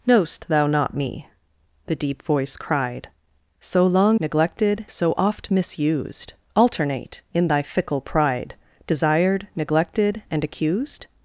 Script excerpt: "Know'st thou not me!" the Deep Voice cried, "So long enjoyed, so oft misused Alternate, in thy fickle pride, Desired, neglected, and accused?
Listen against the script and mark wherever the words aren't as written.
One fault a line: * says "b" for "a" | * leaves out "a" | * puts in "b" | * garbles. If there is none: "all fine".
* says "neglected" for "enjoyed"